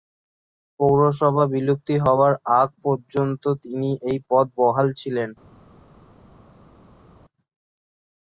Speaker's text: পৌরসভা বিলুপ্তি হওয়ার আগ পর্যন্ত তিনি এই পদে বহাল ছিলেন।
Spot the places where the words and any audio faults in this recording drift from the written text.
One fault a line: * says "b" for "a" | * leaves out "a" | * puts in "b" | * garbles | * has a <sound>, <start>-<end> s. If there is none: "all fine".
all fine